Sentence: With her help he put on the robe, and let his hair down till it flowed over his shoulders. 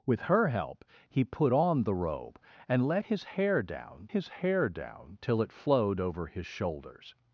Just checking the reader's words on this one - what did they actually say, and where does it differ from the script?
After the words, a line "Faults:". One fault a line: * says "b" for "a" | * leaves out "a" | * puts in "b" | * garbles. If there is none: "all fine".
With her help he put on the robe, and let his hair down his hair down till it flowed over his shoulders.
Faults:
* puts in "his hair down"